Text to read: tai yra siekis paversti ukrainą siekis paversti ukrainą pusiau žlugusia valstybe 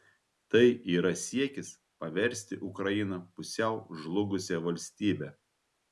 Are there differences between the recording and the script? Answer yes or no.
yes